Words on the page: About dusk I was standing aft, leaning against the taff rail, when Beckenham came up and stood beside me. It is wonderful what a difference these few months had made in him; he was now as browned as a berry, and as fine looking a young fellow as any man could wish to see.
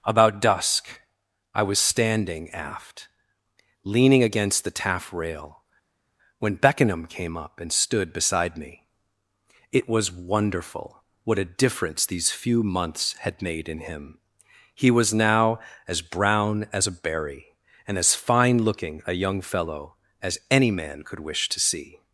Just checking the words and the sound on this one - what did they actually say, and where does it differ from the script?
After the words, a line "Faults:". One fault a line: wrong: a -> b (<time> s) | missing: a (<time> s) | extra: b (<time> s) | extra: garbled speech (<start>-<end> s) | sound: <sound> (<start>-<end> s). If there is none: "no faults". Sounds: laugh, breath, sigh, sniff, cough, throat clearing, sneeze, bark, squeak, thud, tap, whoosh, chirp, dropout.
About dusk I was standing aft, leaning against the taff rail, when Beckenham came up and stood beside me. It was wonderful what a difference these few months had made in him; he was now as brown as a berry, and as fine looking a young fellow as any man could wish to see.
Faults:
wrong: is -> was (9.9 s)
wrong: browned -> brown (16.0 s)